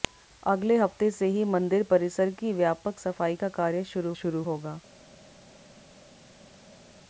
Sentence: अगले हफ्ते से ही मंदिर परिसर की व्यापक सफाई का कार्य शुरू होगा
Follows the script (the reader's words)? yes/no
no